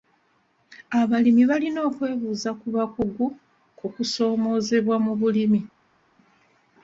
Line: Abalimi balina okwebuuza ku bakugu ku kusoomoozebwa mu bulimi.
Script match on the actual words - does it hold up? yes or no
yes